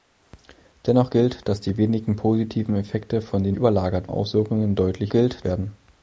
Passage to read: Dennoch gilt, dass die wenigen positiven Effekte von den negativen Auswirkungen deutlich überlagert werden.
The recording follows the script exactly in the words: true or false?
false